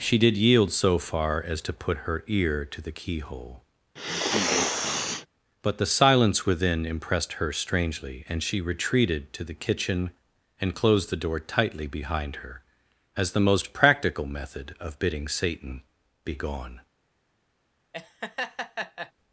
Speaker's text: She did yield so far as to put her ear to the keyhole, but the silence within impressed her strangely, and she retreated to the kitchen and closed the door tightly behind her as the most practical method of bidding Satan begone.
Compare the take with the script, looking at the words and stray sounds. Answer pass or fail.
fail